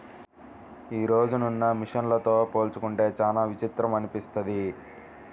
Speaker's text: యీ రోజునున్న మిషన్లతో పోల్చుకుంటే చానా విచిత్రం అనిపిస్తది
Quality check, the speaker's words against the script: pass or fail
pass